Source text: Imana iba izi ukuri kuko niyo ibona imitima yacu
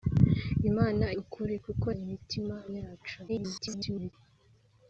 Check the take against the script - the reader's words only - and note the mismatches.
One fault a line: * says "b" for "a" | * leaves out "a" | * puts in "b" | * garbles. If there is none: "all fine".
* leaves out "iba izi"
* leaves out "niyo ibona"
* garbles